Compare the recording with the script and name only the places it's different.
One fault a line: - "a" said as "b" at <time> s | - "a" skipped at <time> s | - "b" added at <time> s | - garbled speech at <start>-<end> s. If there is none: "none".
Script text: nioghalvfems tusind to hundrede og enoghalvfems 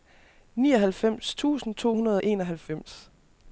none